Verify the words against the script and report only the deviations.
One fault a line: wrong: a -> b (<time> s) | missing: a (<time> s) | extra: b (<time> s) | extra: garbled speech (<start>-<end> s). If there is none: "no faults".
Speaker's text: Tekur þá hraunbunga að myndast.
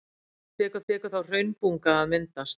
extra: tekur (0.9 s)